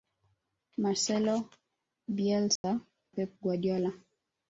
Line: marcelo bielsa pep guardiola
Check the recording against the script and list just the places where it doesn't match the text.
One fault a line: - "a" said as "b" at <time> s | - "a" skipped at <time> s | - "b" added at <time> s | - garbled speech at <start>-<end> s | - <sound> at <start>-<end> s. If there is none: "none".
- dropout at 2.6-2.6 s